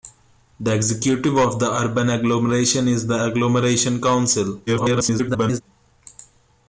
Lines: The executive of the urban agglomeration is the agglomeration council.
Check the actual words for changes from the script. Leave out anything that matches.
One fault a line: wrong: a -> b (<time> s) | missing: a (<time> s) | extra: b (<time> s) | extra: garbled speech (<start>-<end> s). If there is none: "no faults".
extra: garbled speech (4.7-5.6 s)